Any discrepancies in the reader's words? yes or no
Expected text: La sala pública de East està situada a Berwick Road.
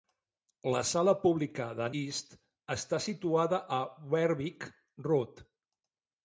no